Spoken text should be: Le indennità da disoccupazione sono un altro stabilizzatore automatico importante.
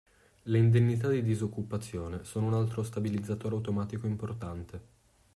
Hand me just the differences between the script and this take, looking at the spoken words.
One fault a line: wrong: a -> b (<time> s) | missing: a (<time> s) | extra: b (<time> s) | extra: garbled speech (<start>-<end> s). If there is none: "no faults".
wrong: da -> di (1.1 s)